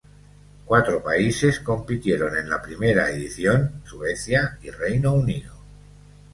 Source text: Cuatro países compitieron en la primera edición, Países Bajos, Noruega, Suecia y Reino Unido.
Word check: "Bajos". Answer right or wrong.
wrong